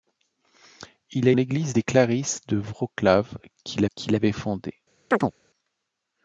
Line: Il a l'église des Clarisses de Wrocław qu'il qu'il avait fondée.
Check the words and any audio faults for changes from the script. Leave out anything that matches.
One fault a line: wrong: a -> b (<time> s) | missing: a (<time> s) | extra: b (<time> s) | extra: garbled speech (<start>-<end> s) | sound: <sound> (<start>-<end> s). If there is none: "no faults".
sound: chirp (5.1-5.3 s)